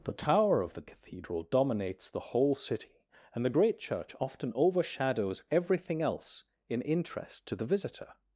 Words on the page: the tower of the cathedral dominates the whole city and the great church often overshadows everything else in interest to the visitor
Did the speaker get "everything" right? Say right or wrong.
right